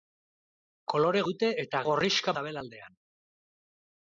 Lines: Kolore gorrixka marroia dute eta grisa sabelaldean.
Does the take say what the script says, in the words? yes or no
no